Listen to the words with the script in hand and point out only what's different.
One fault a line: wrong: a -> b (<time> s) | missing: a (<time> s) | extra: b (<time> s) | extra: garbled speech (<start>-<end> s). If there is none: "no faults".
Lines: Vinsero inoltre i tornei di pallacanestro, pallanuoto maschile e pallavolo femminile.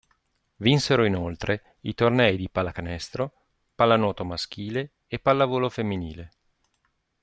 no faults